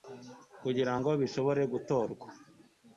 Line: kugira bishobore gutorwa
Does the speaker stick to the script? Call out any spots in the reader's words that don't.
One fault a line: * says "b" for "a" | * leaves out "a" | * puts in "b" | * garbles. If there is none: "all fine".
* puts in "ngo"